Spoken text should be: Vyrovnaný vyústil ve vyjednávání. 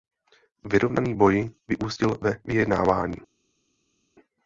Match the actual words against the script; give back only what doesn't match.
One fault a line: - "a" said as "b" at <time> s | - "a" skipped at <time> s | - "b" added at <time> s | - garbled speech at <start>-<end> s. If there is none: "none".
- "boj" added at 1.1 s